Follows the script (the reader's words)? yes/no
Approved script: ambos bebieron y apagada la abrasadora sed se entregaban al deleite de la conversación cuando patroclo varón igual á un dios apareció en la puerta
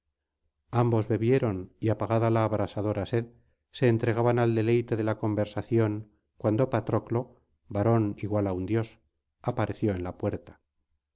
yes